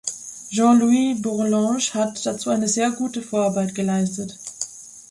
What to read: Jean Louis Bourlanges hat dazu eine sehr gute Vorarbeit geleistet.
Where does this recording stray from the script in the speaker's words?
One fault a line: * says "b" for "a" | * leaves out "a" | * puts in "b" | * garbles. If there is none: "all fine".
all fine